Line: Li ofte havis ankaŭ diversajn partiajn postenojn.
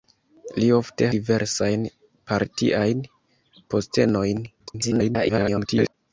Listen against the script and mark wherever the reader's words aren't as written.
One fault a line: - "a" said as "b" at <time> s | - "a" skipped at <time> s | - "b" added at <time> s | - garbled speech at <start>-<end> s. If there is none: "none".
- "havis ankaŭ" skipped at 1.1 s
- garbled speech at 4.6-5.9 s